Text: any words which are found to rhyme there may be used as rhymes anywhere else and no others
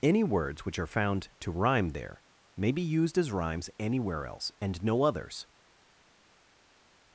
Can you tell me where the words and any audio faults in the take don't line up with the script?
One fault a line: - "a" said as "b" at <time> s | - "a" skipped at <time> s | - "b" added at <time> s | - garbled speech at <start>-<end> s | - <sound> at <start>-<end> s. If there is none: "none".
none